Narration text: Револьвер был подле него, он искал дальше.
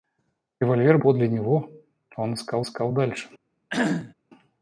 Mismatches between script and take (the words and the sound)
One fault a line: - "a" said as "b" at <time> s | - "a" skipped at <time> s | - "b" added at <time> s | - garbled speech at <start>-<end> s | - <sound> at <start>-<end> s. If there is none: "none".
- "был" skipped at 1.0 s
- "искал" added at 2.6 s
- cough at 3.7-4.1 s